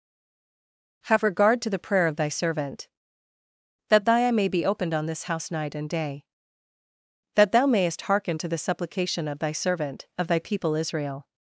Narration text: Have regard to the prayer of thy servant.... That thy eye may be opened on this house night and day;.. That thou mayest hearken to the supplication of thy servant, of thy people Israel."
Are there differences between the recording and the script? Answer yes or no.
no